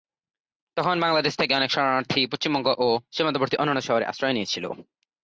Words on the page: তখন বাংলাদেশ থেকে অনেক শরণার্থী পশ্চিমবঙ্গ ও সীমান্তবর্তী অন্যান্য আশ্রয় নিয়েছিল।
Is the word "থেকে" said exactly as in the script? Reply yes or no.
yes